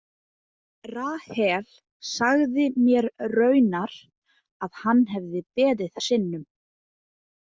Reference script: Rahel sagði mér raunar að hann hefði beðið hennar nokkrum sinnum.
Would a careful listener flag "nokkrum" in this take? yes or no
yes